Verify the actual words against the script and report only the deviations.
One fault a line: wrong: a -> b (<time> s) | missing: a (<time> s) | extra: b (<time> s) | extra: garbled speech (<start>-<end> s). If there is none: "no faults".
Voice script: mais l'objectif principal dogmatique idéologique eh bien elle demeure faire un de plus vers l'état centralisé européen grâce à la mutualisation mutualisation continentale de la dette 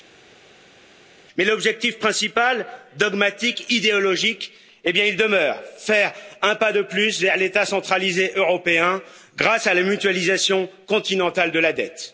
wrong: elle -> il (5.0 s)
extra: pas (6.5 s)
missing: mutualisation (10.7 s)